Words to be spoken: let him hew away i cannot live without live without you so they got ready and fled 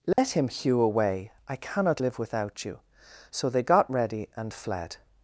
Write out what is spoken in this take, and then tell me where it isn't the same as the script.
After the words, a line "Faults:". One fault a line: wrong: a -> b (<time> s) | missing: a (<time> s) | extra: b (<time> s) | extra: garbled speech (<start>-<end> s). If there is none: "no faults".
let him hew away i cannot live without you so they got ready and fled
Faults:
missing: live without (2.6 s)